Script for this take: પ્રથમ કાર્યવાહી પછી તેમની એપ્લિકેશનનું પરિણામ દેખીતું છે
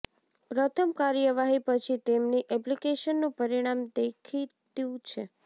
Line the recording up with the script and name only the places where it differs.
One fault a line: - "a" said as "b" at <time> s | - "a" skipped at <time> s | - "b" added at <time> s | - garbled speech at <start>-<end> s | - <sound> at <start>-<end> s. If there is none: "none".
none